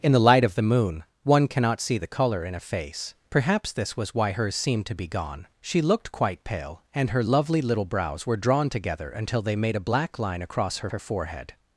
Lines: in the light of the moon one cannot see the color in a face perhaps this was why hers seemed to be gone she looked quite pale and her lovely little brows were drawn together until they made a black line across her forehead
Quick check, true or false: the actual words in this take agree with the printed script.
false